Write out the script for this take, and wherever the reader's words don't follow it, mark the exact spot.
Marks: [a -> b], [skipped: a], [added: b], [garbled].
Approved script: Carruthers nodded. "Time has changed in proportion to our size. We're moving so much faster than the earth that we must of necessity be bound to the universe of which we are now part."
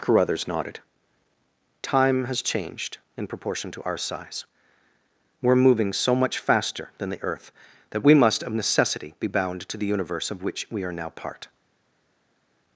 Carruthers nodded. "Time has changed in proportion to our size. We're moving so much faster than the earth that we must of necessity be bound to the universe of which we are now part."